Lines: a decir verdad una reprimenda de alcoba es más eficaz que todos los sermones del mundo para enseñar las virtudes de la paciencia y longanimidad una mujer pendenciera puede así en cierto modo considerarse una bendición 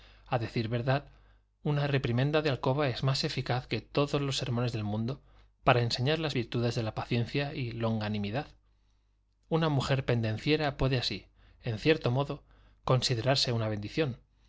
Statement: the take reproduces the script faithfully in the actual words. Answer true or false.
true